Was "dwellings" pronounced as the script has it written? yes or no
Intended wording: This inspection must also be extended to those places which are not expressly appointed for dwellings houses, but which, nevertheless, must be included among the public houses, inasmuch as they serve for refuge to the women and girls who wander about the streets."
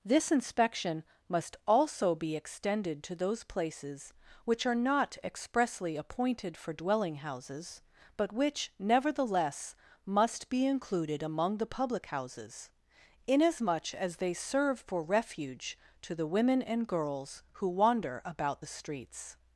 no